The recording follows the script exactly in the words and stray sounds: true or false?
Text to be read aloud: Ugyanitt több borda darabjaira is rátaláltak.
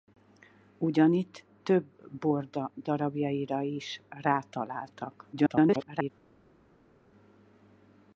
false